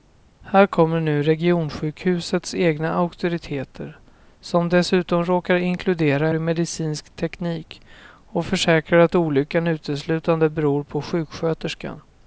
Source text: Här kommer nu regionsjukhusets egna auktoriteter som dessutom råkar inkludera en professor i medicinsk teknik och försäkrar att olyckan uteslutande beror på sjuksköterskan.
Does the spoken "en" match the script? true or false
false